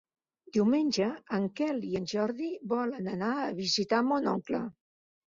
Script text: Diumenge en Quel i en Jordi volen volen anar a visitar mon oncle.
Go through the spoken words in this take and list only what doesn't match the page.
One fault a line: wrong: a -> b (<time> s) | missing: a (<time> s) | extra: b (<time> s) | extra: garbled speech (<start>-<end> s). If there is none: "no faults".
missing: volen (3.1 s)